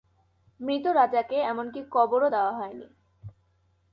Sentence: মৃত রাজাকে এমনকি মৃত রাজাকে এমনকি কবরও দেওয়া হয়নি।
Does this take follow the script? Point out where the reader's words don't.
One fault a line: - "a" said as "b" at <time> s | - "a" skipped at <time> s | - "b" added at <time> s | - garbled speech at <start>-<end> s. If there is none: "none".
- "মৃত রাজাকে এমনকি" skipped at 1.8 s